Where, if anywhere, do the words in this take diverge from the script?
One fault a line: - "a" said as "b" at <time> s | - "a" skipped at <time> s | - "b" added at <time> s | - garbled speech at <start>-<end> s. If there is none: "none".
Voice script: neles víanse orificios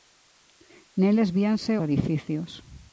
none